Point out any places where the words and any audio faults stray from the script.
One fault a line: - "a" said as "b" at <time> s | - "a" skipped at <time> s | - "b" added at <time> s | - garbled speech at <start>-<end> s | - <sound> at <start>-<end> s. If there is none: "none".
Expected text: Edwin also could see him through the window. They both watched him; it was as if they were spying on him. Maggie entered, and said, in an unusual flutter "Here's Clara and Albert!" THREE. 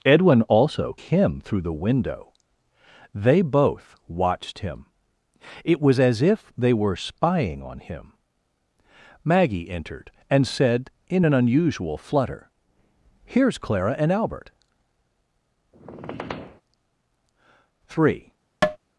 - "could see" skipped at 1.0 s
- squeak at 15.7-16.6 s
- tap at 18.6-18.8 s